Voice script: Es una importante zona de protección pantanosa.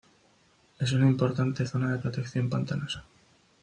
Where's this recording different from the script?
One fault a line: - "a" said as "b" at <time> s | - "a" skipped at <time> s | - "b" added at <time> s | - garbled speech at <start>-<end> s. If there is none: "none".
none